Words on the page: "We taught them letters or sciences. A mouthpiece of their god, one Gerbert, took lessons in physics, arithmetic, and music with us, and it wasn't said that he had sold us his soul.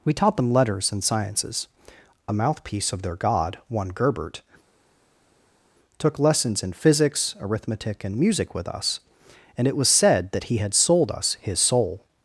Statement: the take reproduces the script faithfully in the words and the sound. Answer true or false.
false